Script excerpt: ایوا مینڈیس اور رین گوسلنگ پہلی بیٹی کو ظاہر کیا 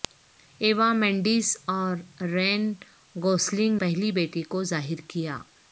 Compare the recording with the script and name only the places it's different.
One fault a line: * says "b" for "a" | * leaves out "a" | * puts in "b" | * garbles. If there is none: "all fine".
all fine